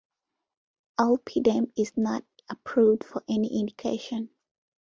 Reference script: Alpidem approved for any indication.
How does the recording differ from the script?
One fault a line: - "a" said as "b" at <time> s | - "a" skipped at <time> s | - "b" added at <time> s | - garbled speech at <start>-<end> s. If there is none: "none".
- "is not" added at 1.8 s